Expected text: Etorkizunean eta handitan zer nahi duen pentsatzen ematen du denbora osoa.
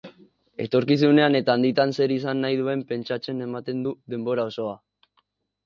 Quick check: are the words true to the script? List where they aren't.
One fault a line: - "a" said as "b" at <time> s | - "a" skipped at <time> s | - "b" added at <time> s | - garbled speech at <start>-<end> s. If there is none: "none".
- "izan" added at 2.1 s